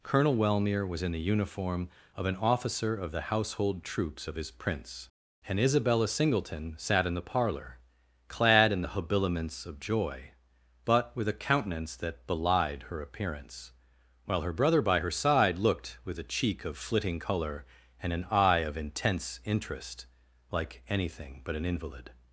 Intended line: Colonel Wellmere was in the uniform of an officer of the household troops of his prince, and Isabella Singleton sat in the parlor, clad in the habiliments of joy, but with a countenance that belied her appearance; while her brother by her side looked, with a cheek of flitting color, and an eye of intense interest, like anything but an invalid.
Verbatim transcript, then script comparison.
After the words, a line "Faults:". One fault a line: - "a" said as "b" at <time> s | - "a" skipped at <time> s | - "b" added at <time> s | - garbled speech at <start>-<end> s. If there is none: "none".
Colonel Wellmere was in the uniform of an officer of the household troops of his prince, and Isabella Singleton sat in the parlor, clad in the habiliments of joy, but with a countenance that belied her appearance; while her brother by her side looked, with a cheek of flitting color, and an eye of intense interest, like anything but an invalid.
Faults:
none